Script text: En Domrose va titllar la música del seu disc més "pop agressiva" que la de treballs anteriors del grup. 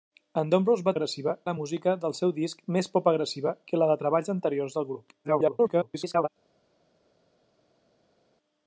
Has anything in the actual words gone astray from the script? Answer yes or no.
yes